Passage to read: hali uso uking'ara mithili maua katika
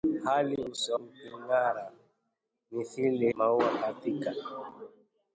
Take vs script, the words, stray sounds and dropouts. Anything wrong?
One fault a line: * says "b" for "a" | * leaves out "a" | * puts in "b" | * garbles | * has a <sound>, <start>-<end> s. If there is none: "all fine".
all fine